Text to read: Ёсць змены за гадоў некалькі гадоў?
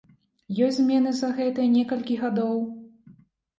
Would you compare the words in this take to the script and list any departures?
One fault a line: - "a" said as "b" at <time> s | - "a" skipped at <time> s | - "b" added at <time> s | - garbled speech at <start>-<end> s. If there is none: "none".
- "гадоў" said as "гэтыя" at 1.4 s